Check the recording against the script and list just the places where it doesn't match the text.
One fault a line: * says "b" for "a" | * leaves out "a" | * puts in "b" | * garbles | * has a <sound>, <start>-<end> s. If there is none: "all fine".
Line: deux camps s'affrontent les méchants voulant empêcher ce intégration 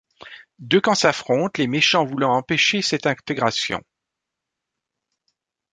* says "cette" for "ce"